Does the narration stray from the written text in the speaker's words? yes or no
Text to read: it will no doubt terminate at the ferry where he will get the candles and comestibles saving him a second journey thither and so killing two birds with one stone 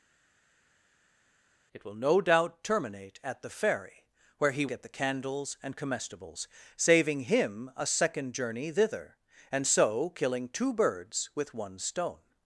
yes